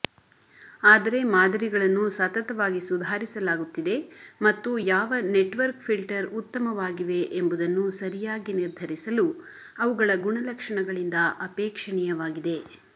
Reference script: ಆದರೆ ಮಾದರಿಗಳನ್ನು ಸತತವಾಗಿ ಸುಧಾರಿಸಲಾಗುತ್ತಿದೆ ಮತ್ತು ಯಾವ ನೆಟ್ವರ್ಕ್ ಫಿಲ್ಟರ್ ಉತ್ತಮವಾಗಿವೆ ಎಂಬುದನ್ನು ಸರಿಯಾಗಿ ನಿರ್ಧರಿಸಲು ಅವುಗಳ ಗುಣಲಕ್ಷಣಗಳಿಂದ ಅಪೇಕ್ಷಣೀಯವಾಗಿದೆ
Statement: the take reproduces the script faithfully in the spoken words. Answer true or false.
true